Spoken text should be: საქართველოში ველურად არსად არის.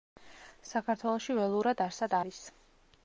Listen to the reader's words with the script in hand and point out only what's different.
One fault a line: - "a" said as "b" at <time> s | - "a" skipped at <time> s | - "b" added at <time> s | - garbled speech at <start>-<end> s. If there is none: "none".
none